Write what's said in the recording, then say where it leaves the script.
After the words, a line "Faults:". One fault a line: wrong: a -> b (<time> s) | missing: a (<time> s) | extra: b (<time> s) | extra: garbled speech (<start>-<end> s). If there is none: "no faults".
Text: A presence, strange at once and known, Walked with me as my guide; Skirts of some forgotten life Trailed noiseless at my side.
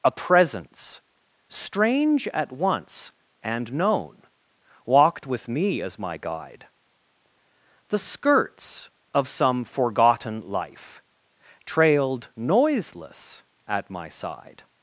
A presence, strange at once and known, Walked with me as my guide; The skirts of some forgotten life Trailed noiseless at my side.
Faults:
extra: The (7.9 s)